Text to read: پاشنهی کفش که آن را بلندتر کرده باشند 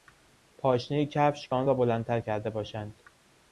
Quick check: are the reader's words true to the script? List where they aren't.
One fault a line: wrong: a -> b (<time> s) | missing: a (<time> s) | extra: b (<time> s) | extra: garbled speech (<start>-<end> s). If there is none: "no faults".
no faults